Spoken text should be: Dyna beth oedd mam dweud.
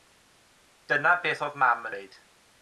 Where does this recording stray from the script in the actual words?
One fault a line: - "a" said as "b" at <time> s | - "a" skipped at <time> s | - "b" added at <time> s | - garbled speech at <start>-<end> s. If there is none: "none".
none